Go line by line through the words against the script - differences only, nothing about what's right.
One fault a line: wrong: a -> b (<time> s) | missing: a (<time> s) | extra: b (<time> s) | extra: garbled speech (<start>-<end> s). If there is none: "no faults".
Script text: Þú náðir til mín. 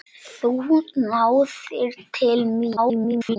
extra: garbled speech (2.8-3.4 s)